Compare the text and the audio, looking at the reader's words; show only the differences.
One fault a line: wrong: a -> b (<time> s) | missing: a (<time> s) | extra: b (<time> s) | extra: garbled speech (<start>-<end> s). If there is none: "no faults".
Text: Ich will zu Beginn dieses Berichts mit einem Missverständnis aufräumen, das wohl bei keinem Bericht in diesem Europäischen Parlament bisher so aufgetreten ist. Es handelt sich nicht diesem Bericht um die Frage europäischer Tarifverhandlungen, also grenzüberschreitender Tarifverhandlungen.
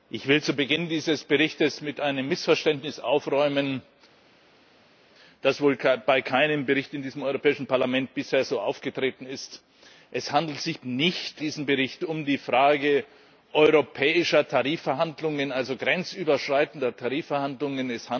no faults